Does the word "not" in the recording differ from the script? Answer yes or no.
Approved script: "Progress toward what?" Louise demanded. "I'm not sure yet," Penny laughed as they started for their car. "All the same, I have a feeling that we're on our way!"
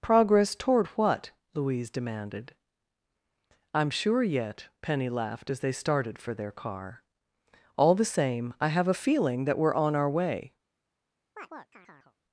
yes